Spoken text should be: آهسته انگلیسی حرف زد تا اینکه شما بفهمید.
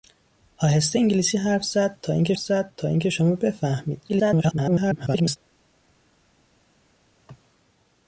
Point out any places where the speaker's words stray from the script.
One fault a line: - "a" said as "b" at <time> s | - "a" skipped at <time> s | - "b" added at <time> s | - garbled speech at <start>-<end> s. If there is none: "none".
- "زد تا اینکه" added at 2.4 s
- garbled speech at 4.1-5.4 s